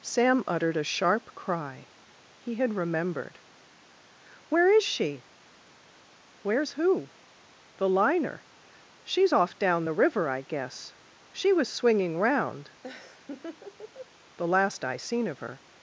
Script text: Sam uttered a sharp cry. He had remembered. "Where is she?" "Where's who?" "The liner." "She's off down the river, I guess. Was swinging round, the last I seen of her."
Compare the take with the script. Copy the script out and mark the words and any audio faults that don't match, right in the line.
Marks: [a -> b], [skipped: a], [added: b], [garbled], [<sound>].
Sam uttered a sharp cry. He had remembered. "Where is she?" "Where's who?" "The liner." "She's off down the river, I guess. [added: She] Was swinging round, [laugh] the last I seen of her."